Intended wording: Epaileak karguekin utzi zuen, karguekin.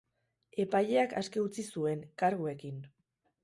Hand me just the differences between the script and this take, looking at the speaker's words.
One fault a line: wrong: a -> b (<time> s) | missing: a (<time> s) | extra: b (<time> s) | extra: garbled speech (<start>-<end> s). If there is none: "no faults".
wrong: karguekin -> aske (1.2 s)